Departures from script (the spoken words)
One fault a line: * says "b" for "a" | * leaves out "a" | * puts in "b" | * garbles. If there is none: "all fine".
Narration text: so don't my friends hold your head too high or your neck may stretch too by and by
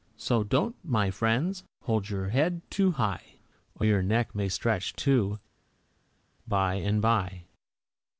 all fine